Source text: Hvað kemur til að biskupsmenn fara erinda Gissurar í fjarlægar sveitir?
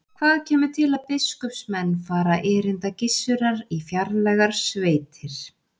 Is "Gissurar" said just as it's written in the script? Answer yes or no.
yes